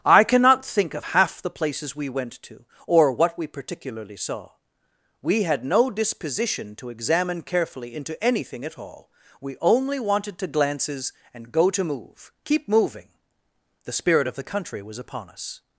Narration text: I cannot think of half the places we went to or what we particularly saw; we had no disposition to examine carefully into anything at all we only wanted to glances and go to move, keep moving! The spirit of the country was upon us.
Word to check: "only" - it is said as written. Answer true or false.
true